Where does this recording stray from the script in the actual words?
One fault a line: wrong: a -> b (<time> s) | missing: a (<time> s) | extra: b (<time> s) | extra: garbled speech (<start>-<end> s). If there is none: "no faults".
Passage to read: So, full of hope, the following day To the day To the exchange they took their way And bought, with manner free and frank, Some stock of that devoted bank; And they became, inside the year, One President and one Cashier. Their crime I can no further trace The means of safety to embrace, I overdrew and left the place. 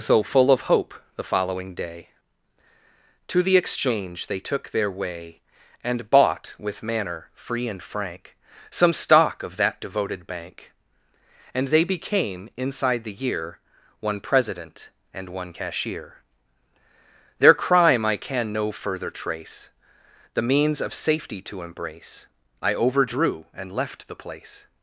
missing: day To the (3.5 s)